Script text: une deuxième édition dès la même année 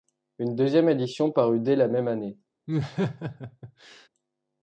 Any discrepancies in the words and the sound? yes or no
yes